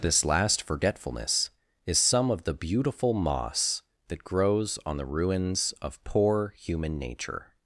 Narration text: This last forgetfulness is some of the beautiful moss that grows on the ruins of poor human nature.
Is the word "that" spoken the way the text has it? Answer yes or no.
yes